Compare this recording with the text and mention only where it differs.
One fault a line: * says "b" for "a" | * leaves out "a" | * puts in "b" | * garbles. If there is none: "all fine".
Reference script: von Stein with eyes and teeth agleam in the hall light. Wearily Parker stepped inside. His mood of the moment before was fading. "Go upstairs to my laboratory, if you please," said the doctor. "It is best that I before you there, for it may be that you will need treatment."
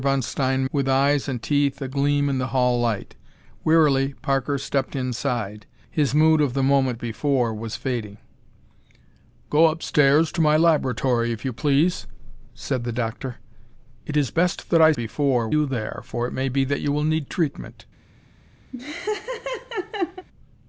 all fine